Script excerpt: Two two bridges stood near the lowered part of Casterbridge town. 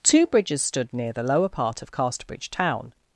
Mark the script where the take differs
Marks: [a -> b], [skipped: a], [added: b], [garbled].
Two [skipped: two] bridges stood near the [lowered -> lower] part of Casterbridge town.